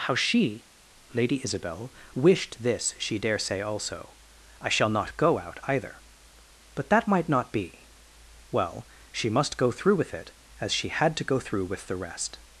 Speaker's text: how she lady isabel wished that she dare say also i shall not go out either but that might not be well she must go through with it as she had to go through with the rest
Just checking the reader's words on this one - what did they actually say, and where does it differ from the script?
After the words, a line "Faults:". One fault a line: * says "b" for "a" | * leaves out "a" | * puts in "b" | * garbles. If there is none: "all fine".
how she lady isabel wished this she dare say also i shall not go out either but that might not be well she must go through with it as she had to go through with the rest
Faults:
* says "this" for "that"